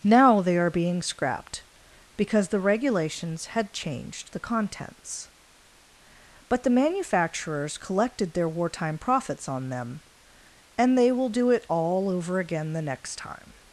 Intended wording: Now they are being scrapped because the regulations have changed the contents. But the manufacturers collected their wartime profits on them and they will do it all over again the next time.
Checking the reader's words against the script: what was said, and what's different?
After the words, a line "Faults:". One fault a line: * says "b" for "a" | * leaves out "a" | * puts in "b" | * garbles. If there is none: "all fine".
Now they are being scrapped because the regulations had changed the contents. But the manufacturers collected their wartime profits on them and they will do it all over again the next time.
Faults:
* says "had" for "have"